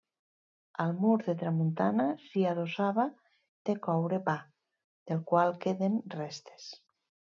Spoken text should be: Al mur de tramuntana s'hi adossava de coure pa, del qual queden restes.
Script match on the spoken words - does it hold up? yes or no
yes